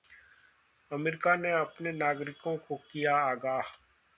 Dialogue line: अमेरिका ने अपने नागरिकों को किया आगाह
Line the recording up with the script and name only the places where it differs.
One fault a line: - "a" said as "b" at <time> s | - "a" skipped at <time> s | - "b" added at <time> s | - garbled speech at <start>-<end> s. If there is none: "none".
none